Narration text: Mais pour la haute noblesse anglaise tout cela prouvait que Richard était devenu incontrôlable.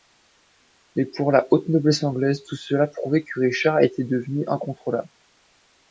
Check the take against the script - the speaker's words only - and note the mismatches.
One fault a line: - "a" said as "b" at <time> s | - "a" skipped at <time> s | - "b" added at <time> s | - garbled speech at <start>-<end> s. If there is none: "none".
none